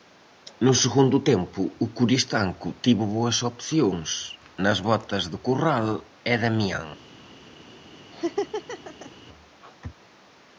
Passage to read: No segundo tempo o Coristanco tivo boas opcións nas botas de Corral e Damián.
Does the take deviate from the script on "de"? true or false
false